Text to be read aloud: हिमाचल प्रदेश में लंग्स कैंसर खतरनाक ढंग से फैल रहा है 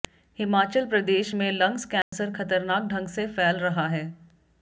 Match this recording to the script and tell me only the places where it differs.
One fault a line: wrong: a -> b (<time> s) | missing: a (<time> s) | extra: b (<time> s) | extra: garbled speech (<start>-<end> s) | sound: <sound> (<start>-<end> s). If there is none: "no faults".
sound: dropout (2.0-2.1 s)